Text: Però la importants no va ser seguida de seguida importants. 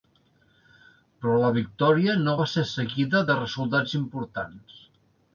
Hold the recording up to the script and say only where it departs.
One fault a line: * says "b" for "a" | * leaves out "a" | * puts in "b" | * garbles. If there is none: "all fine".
* says "victòria" for "importants"
* says "resultats" for "seguida"